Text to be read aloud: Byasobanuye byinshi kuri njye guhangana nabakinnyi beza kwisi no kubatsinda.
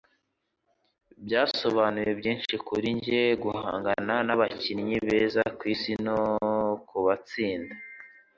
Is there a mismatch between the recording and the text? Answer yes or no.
no